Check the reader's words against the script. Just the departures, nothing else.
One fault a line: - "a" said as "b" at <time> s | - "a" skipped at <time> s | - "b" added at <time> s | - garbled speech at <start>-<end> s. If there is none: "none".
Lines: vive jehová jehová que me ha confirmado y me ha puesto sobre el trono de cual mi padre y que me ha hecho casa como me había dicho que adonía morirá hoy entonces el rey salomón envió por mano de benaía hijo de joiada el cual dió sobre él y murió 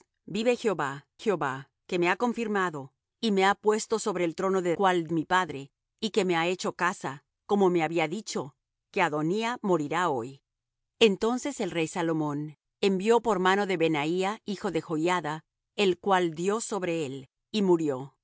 none